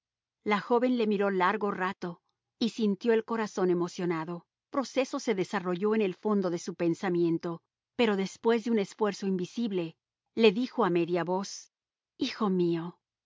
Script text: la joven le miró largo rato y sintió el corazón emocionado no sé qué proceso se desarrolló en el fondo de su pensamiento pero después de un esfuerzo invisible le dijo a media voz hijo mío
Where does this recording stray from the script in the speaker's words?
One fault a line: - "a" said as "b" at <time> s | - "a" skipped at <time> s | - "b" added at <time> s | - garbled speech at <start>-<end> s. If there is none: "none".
- "no sé qué" skipped at 4.5 s